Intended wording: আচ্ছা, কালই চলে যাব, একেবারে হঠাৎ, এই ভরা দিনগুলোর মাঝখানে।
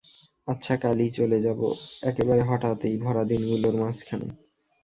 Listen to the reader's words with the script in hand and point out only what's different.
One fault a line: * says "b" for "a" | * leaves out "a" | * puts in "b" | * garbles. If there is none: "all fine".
all fine